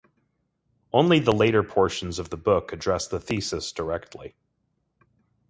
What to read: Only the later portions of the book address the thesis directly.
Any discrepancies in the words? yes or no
no